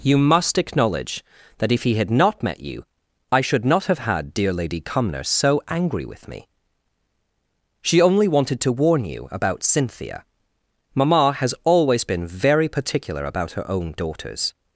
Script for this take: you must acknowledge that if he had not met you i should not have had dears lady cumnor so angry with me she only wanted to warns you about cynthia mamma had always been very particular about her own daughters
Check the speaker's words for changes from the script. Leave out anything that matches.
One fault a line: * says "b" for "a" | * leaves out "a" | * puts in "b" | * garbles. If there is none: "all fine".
* says "dear" for "dears"
* says "warn" for "warns"
* says "has" for "had"